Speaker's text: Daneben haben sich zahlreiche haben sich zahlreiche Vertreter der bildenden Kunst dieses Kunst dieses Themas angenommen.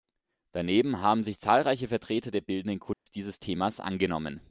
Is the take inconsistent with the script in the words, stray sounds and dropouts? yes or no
yes